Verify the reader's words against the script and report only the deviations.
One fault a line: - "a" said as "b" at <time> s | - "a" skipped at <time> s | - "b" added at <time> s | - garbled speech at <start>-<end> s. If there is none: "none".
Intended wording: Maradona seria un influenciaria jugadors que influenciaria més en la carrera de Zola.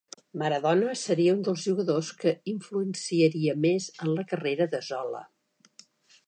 - "influenciaria" said as "dels" at 1.5 s